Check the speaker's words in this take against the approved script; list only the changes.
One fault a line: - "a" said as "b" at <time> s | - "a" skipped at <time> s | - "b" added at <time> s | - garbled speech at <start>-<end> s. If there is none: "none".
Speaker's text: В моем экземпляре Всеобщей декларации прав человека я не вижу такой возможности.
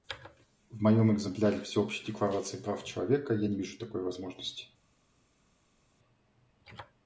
none